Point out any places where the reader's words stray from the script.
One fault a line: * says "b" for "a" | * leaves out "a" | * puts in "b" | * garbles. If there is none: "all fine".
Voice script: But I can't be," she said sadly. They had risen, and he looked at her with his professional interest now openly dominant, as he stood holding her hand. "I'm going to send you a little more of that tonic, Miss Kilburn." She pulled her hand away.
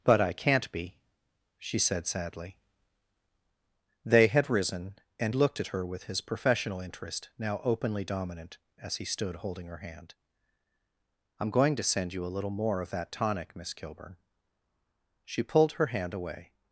* leaves out "he"